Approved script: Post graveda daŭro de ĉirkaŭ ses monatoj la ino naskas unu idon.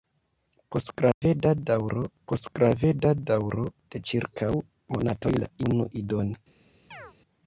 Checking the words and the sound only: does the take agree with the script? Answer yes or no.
no